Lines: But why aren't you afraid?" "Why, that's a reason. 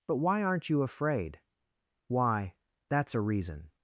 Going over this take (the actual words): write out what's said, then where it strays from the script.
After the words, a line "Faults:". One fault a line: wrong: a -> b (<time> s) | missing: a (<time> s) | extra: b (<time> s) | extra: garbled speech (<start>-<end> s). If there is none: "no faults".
But why aren't you afraid?" "Why, that's a reason.
Faults:
no faults